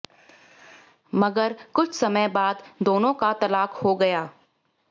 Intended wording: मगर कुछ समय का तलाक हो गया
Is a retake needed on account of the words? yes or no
yes